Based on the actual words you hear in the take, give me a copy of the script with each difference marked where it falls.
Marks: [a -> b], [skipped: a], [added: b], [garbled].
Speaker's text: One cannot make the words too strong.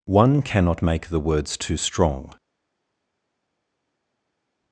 One cannot make the words too strong.